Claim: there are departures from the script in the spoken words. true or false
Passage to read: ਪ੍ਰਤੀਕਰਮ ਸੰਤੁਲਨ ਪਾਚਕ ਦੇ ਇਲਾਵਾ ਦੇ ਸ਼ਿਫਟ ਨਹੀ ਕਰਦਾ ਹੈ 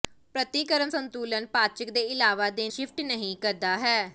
false